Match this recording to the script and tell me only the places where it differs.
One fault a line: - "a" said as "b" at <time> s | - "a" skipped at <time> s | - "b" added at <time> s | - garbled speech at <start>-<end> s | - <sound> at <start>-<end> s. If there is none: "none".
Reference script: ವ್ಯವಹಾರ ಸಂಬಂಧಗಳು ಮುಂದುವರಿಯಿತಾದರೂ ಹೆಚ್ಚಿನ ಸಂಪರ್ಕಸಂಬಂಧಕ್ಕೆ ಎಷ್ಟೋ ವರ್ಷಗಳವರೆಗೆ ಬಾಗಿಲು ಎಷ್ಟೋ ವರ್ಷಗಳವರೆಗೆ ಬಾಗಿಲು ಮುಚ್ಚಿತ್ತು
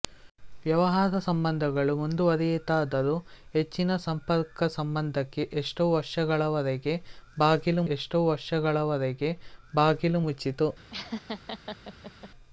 - laugh at 10.9-12.3 s